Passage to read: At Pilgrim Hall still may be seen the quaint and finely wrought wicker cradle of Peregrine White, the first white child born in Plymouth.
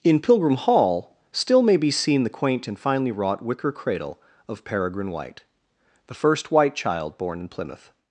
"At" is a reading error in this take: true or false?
true